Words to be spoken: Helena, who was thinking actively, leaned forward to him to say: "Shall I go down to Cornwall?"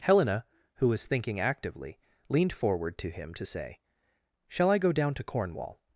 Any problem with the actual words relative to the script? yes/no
no